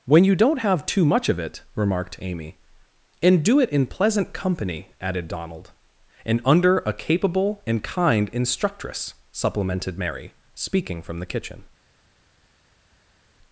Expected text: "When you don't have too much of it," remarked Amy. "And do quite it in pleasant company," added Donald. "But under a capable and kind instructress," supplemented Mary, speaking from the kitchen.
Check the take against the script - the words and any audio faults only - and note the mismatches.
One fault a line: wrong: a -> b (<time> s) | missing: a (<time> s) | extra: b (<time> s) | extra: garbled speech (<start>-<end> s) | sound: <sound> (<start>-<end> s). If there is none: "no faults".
missing: quite (3.6 s)
wrong: But -> And (6.2 s)